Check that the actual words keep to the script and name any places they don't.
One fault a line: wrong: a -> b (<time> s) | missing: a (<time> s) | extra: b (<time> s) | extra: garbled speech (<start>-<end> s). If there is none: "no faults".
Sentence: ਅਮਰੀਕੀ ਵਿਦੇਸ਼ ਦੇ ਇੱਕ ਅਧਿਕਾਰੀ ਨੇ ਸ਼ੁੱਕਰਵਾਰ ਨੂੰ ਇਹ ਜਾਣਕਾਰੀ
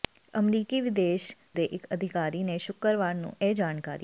no faults